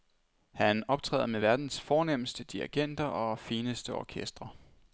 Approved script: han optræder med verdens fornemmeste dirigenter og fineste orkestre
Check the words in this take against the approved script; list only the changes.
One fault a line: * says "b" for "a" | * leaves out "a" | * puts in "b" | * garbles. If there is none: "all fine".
all fine